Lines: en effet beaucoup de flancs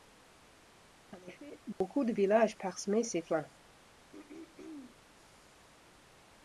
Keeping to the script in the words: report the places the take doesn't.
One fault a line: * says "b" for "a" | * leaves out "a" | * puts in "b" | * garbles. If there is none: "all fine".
* puts in "villages parsemaient ses"